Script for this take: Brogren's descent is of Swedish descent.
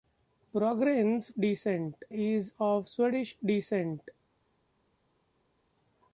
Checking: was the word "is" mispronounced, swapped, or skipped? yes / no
no